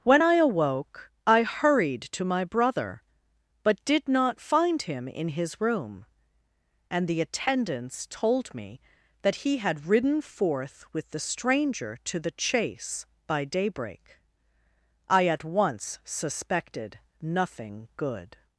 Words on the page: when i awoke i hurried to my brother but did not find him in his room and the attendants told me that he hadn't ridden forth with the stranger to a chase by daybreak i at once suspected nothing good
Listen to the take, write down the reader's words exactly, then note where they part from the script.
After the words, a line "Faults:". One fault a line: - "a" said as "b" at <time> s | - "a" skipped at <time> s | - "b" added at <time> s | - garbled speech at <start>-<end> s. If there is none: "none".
when i awoke i hurried to my brother but did not find him in his room and the attendants told me that he had ridden forth with the stranger to the chase by daybreak i at once suspected nothing good
Faults:
- "hadn't" said as "had" at 9.6 s
- "a" said as "the" at 12.2 s